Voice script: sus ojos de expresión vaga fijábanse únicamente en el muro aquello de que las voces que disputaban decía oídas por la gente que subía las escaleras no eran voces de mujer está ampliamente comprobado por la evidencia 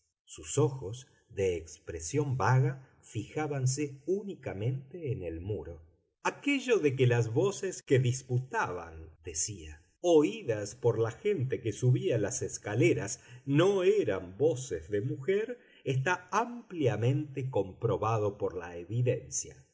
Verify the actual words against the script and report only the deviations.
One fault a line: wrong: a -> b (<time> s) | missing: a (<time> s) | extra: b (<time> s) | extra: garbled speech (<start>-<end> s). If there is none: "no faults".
no faults